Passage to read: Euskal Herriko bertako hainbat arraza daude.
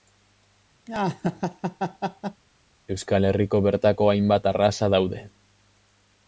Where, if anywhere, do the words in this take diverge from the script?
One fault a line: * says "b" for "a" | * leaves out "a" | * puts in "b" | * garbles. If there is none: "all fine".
all fine